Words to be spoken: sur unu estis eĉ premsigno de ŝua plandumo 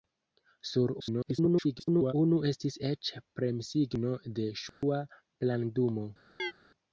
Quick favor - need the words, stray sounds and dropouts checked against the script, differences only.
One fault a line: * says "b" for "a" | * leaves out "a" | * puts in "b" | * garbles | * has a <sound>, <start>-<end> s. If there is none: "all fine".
* garbles
* has a dropout, 4.7-4.8 s
* has a chirp, 6.4-6.5 s